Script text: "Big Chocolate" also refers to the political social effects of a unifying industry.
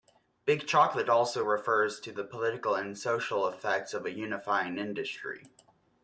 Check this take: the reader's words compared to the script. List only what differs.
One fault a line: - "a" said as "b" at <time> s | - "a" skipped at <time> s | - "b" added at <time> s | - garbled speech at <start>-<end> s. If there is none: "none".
- "and" added at 2.7 s